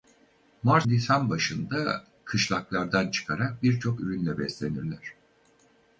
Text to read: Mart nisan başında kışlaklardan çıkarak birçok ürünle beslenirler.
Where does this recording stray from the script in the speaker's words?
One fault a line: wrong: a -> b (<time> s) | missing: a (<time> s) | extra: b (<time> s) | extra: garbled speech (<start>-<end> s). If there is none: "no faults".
no faults